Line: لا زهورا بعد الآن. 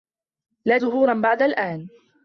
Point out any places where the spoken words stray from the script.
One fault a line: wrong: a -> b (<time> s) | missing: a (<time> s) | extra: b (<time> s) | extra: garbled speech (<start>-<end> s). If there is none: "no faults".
no faults